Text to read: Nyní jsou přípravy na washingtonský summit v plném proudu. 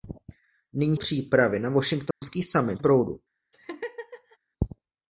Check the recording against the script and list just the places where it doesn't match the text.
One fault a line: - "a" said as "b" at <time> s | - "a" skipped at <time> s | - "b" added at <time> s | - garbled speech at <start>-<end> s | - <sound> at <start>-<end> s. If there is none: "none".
- "jsou" skipped at 1.0 s
- dropout at 2.1-2.2 s
- "v plném" skipped at 2.8 s
- laugh at 3.5-4.4 s